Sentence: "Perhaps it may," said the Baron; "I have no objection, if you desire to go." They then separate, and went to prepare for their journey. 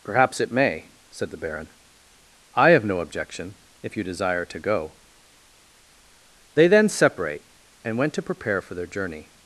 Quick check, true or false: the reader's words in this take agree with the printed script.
true